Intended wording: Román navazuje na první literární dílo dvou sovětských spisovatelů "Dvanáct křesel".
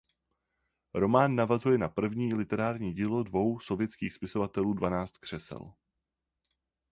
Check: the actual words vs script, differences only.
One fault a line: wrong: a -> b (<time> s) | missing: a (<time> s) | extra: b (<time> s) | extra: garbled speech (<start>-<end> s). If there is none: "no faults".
no faults